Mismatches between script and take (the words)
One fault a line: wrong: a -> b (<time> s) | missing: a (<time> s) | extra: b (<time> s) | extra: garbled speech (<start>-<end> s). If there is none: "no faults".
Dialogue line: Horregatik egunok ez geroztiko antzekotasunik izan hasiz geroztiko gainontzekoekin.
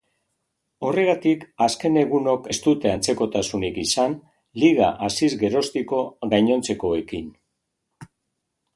extra: azken (1.6 s)
wrong: geroztiko -> dute (2.7 s)
extra: liga (4.7 s)